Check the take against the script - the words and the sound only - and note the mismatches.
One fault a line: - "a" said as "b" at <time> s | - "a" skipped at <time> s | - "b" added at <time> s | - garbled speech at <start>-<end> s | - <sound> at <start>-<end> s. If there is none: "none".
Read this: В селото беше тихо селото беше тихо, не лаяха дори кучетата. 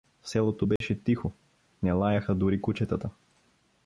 - dropout at 0.8-0.8 s
- "селото беше тихо" skipped at 1.3 s